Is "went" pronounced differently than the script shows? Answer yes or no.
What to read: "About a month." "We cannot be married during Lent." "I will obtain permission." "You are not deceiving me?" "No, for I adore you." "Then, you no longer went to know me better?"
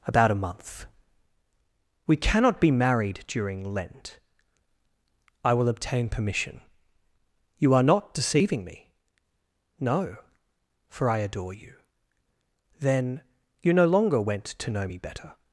no